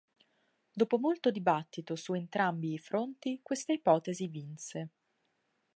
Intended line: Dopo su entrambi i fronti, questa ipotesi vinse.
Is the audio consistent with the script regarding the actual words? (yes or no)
no